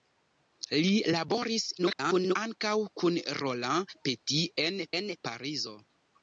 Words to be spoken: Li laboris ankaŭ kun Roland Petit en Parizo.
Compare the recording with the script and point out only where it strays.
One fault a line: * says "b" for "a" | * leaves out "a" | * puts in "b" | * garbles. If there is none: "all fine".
* garbles
* puts in "en"